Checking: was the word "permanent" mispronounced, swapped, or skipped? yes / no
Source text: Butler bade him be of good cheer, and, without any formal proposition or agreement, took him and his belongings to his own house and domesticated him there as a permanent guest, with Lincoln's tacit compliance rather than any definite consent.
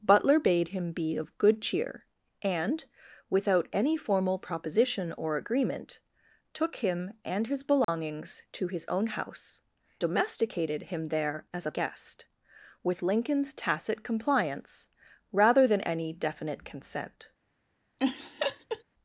yes